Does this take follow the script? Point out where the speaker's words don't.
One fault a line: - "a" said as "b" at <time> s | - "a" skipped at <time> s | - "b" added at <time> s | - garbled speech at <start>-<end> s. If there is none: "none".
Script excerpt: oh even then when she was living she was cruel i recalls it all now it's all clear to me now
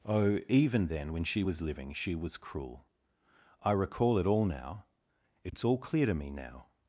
- "recalls" said as "recall" at 3.7 s